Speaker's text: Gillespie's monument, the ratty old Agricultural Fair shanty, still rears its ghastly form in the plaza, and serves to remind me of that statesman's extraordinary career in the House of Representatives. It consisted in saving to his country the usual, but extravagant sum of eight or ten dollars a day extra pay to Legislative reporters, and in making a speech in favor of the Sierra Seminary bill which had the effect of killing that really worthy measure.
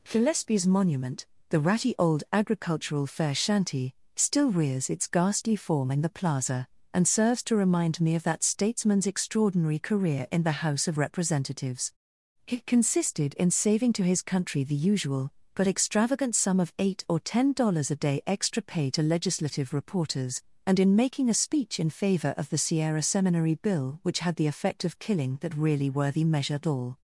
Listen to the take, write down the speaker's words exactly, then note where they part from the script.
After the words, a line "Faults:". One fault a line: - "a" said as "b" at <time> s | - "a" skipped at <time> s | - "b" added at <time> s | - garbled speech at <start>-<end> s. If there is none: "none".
Gillespie's monument, the ratty old Agricultural Fair shanty, still rears its ghastly form in the plaza, and serves to remind me of that statesman's extraordinary career in the House of Representatives. It consisted in saving to his country the usual, but extravagant sum of eight or ten dollars a day extra pay to Legislative reporters, and in making a speech in favor of the Sierra Seminary bill which had the effect of killing that really worthy measure. All
Faults:
- "All" added at 26.6 s